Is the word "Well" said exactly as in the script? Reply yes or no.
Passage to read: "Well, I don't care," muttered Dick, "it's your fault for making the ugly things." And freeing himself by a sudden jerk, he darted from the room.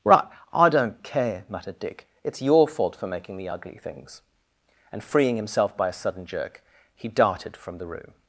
no